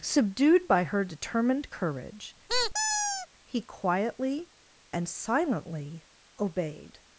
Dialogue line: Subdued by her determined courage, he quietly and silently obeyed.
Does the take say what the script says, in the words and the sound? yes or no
no